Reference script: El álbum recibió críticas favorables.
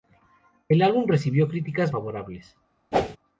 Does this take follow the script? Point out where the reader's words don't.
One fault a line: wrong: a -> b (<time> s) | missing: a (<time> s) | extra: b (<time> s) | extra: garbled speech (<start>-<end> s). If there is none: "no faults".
no faults